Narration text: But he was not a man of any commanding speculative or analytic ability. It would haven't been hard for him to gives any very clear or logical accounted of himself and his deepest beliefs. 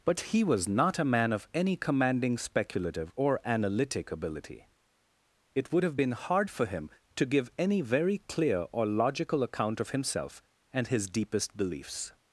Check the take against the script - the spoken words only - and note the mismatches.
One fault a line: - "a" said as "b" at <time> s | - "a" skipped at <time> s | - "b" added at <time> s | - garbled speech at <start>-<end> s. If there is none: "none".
- "haven't" said as "have" at 5.8 s
- "gives" said as "give" at 7.2 s
- "accounted" said as "account" at 9.4 s